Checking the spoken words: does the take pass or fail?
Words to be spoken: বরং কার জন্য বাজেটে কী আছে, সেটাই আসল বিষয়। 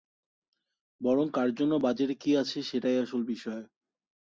pass